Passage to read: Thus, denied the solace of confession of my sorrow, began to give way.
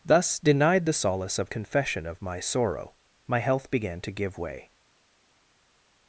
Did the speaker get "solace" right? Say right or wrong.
right